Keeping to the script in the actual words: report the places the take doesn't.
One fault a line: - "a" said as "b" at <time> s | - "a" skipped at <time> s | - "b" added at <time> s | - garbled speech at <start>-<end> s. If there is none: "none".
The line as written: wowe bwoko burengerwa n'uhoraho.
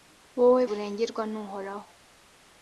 - "bwoko" skipped at 0.6 s